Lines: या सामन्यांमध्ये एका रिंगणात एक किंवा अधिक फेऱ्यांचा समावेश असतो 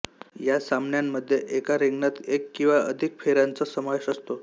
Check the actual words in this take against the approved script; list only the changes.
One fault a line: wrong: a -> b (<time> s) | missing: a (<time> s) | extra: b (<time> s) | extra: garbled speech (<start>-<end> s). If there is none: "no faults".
no faults